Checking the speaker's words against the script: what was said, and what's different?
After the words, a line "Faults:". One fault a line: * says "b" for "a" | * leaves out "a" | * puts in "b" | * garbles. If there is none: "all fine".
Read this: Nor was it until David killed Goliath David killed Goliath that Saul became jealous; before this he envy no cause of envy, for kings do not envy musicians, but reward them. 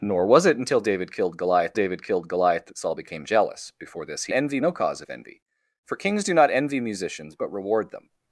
Nor was it until David killed Goliath David killed Goliath that Saul became jealous; before this he envy no cause of envy, for kings do not envy musicians, but reward them.
Faults:
all fine